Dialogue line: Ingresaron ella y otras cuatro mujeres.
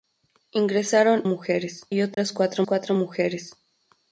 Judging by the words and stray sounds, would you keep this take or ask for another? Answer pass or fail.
fail